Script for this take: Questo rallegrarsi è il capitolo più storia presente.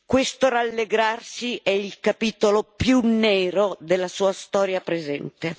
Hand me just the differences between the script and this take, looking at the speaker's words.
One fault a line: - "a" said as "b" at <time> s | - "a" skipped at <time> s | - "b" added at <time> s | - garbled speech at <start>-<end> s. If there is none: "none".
- "nero della sua" added at 3.0 s